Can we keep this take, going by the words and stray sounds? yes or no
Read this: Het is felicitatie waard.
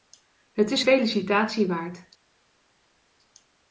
yes